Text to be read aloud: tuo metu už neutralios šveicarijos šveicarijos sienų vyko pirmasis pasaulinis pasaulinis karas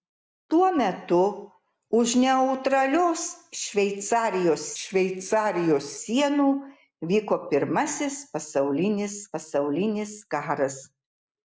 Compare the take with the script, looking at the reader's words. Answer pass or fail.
pass